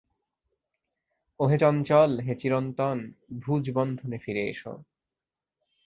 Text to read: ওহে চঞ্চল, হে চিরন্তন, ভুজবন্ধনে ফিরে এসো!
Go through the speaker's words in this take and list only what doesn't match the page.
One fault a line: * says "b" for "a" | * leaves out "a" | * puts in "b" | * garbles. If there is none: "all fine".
all fine